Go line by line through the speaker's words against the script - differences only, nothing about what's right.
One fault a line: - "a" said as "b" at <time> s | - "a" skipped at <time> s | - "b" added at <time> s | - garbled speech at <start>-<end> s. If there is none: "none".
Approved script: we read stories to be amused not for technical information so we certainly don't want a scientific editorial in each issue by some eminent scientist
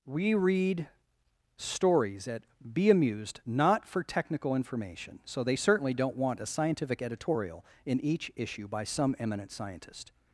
- "to" said as "at" at 2.3 s
- "we" said as "they" at 5.4 s